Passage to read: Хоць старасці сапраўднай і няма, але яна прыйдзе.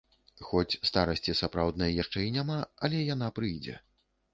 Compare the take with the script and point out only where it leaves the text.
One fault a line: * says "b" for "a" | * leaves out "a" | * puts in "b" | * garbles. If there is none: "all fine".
* puts in "яшчэ"